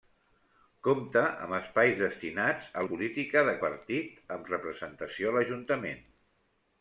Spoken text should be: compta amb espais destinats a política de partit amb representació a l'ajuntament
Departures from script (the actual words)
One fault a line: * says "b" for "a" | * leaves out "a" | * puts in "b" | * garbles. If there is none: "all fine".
all fine